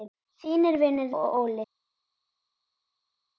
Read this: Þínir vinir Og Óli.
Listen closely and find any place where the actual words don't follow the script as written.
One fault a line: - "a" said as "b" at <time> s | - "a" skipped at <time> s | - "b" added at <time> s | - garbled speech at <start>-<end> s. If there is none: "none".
none